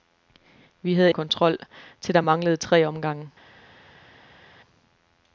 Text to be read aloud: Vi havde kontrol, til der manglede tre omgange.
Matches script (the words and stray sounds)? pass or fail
pass